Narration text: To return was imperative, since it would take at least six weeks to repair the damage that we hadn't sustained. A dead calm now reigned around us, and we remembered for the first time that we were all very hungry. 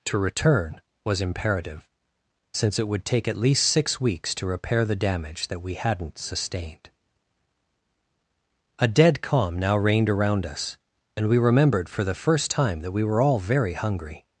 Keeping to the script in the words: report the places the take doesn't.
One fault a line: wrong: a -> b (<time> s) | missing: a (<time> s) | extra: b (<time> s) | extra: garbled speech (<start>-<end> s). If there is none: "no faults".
no faults